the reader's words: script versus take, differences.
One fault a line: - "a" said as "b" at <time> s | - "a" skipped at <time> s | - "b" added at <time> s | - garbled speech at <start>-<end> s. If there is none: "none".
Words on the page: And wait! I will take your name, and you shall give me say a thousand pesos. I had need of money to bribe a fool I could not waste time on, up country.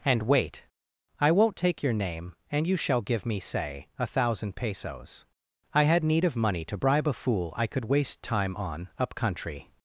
- "will" said as "won't" at 1.3 s
- "not" skipped at 7.9 s